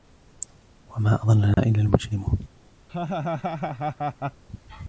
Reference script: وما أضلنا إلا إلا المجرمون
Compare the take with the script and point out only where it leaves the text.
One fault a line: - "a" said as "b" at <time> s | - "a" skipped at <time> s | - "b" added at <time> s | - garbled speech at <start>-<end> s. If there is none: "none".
- "إلا" skipped at 1.8 s